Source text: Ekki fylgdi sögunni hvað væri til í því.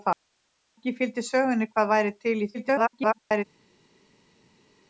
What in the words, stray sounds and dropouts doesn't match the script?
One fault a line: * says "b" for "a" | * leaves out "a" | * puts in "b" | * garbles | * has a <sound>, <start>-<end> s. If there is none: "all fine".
* garbles